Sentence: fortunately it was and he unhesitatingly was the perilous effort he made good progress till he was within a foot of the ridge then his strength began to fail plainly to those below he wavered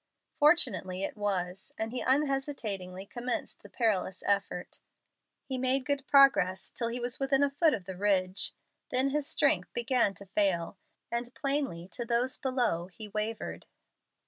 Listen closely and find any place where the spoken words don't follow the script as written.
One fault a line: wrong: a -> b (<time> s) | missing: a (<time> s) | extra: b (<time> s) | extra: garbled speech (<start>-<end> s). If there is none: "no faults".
wrong: was -> commenced (3.0 s)
extra: and (11.1 s)